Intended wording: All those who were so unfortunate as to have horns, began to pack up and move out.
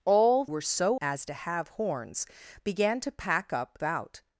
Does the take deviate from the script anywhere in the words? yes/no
yes